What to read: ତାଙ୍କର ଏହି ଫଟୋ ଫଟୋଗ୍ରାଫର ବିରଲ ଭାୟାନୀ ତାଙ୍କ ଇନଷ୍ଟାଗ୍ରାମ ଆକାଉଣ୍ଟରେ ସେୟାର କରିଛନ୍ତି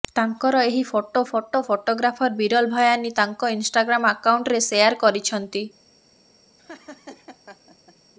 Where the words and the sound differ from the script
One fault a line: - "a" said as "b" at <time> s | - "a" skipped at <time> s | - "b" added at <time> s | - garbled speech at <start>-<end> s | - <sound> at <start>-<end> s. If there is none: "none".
- "ଫଟୋ" added at 1.3 s
- laugh at 6.6-8.0 s